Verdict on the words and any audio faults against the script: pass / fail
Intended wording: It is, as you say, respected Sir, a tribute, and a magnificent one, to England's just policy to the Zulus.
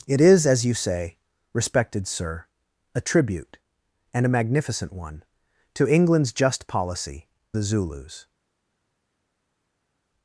fail